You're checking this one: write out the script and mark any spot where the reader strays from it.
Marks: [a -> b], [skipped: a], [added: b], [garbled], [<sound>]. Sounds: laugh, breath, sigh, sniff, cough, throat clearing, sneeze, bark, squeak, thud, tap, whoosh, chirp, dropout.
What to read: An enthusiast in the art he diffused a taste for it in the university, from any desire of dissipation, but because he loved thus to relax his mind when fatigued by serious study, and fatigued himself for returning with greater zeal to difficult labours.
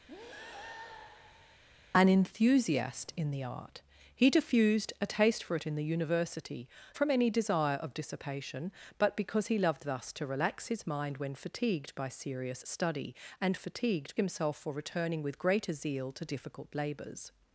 [breath] An enthusiast in the art he diffused a taste for it in the university, from any desire of dissipation, but because he loved thus to relax his mind when fatigued by serious study, and fatigued himself for returning with greater zeal to difficult labours.